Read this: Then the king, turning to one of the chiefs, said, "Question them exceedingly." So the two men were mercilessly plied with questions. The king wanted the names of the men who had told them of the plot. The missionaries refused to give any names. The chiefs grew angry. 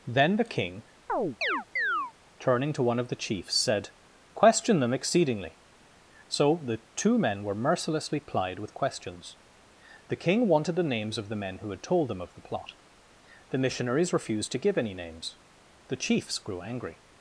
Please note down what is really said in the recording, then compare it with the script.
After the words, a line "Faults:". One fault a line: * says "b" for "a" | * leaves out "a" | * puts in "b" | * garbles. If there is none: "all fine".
Then the king, turning to one of the chiefs, said, "Question them exceedingly." So the two men were mercilessly plied with questions. The king wanted the names of the men who had told them of the plot. The missionaries refused to give any names. The chiefs grew angry.
Faults:
all fine